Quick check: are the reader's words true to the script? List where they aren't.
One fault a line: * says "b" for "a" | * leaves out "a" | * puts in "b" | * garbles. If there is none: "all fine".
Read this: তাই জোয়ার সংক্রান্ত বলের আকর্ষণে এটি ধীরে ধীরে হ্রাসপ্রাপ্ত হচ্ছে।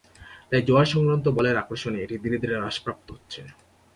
all fine